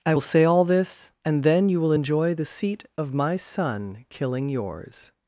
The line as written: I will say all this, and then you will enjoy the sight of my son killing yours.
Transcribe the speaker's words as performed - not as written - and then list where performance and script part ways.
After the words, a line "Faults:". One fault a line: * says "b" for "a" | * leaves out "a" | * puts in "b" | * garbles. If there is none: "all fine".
I will say all this, and then you will enjoy the seat of my son killing yours.
Faults:
* says "seat" for "sight"